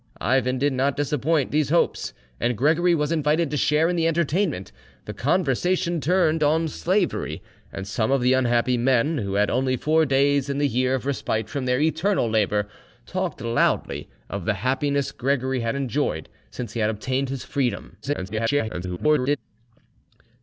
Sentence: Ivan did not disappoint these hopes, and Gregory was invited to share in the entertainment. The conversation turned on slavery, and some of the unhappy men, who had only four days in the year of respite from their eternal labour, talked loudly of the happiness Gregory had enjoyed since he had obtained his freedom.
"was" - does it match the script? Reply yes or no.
yes